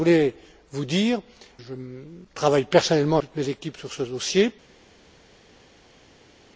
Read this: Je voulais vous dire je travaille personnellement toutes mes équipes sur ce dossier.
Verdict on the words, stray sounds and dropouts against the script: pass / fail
pass